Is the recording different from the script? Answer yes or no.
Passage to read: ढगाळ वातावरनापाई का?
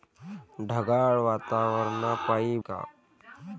no